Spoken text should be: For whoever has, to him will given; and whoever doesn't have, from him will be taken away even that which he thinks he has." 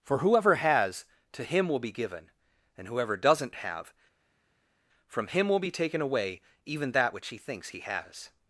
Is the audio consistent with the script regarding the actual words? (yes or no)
no